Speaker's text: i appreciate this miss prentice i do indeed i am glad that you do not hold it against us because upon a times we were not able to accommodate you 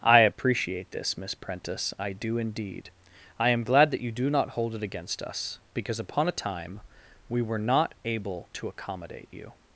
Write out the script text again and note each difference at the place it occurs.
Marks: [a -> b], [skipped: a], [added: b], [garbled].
i appreciate this miss prentice i do indeed i am glad that you do not hold it against us because upon a [times -> time] we were not able to accommodate you